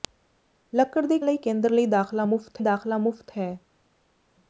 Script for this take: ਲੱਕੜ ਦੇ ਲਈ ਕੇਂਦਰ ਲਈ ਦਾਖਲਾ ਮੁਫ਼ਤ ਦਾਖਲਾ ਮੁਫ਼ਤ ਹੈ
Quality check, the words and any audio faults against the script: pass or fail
pass